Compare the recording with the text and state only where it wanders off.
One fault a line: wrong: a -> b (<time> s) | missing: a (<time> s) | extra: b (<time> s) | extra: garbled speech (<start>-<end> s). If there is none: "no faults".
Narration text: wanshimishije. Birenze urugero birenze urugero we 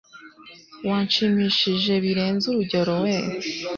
missing: birenze urugero (2.9 s)